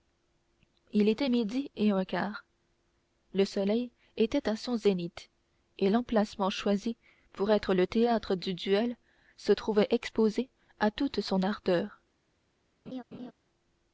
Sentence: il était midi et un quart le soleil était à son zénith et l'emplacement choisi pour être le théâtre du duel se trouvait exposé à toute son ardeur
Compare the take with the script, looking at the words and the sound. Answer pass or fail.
fail